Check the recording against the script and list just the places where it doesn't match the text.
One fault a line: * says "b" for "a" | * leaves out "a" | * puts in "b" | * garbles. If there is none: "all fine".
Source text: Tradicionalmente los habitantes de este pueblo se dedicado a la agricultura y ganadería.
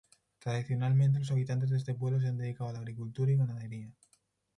* puts in "han"